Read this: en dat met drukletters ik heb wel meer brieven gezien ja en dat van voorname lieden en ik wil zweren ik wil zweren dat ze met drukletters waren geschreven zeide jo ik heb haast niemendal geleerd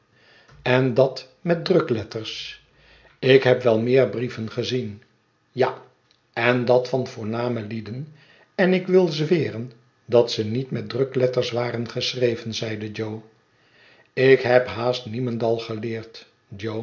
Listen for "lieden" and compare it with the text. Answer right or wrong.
right